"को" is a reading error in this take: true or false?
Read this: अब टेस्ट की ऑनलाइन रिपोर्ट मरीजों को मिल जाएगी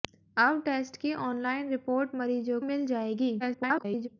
true